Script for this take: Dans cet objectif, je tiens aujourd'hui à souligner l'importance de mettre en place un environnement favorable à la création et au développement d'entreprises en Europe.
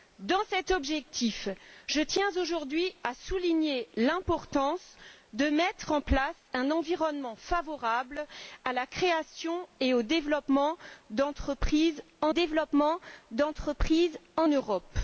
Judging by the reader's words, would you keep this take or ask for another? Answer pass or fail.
fail